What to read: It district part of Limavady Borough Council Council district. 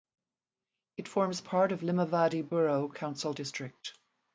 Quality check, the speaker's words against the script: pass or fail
fail